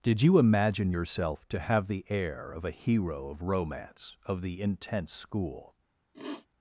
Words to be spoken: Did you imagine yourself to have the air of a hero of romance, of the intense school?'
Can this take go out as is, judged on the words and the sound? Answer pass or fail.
fail